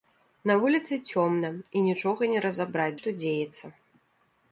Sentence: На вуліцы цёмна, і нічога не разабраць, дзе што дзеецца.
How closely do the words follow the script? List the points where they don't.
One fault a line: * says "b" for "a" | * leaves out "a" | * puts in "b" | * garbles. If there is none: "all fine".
* leaves out "дзе"